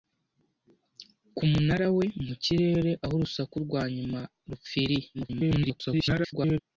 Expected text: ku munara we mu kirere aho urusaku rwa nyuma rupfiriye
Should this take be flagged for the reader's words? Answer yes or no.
yes